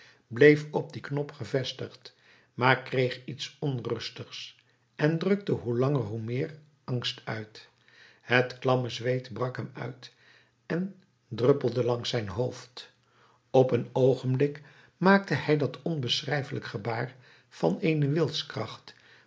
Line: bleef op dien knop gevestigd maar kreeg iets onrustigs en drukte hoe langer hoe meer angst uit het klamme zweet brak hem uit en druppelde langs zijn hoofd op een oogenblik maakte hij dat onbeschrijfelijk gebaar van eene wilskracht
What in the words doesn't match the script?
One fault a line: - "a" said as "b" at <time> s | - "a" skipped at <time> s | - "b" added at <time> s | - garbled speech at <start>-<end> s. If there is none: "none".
none